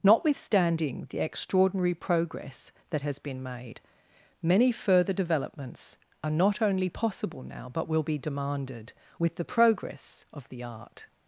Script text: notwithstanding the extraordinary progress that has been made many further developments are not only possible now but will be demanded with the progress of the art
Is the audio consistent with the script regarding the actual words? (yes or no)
yes